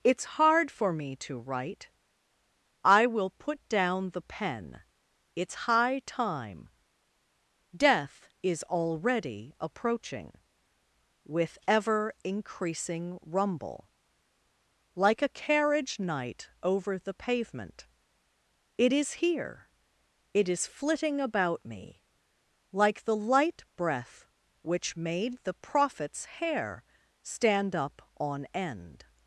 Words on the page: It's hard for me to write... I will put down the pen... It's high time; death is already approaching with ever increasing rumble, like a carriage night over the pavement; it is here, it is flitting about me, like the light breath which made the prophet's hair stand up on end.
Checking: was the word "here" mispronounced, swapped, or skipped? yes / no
no